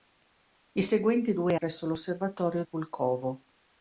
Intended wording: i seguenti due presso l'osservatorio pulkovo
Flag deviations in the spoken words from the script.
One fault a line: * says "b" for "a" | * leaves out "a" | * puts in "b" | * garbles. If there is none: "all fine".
all fine